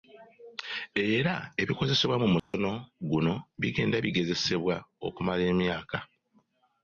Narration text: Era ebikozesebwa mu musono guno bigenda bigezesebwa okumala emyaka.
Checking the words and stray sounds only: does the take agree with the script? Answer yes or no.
no